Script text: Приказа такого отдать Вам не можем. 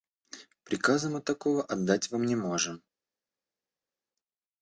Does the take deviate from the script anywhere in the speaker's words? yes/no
yes